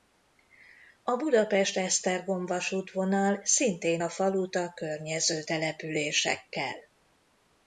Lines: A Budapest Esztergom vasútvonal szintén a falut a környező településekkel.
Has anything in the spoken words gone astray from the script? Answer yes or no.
no